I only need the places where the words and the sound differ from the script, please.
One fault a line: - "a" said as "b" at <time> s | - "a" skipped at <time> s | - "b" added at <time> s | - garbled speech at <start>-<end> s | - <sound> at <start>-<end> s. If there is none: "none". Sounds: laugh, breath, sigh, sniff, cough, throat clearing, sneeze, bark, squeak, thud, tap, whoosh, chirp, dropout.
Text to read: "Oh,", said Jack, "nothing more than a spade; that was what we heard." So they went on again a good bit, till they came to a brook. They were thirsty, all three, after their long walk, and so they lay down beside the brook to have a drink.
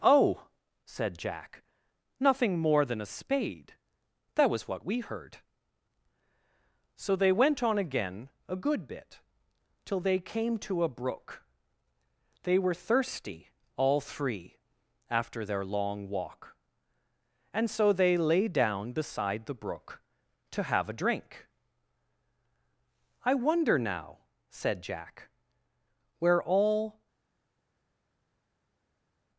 - "I wonder now said Jack where all" added at 23.2 s